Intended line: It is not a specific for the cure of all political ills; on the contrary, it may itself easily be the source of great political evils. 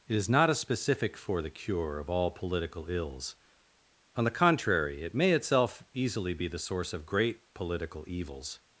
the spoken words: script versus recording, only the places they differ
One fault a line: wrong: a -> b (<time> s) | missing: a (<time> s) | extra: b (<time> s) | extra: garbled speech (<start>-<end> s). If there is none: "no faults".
no faults